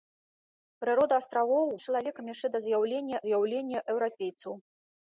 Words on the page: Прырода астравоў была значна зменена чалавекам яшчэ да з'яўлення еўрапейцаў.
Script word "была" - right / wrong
wrong